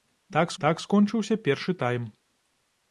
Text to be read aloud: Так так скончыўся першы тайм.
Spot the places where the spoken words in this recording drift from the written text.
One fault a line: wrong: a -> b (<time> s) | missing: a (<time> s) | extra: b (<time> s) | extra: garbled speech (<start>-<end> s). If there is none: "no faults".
no faults